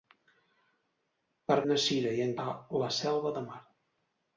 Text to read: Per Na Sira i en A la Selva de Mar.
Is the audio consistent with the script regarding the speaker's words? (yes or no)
yes